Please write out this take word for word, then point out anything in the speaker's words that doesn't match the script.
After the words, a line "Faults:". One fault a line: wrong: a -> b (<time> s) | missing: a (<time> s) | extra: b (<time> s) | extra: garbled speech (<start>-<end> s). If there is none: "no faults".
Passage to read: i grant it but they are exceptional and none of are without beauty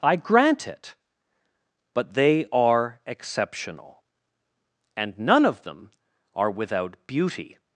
i grant it but they are exceptional and none of them are without beauty
Faults:
extra: them (5.6 s)